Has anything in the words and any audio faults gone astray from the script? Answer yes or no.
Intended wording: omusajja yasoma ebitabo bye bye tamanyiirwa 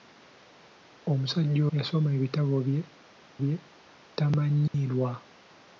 yes